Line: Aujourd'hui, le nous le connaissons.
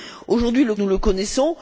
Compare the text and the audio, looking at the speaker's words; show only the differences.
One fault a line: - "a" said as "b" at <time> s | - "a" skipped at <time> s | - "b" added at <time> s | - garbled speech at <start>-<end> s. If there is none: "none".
none